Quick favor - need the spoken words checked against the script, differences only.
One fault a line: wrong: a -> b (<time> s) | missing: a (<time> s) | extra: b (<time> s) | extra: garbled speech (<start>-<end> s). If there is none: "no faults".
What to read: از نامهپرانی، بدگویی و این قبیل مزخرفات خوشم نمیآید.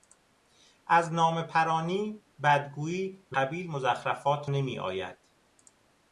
missing: این (3.4 s)
missing: خوشم (4.4 s)